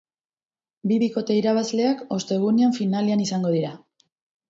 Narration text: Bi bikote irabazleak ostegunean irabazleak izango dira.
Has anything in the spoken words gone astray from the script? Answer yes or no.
yes